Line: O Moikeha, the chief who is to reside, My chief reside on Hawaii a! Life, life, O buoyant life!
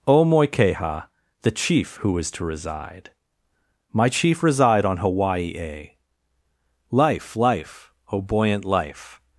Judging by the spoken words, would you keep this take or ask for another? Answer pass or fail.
pass